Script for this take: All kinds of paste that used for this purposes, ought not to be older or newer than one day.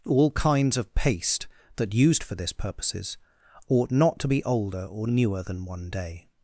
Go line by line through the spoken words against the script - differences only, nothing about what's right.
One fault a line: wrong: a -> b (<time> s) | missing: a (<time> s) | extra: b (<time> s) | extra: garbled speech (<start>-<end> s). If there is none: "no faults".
no faults